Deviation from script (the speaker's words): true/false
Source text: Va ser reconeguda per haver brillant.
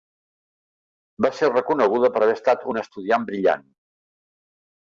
true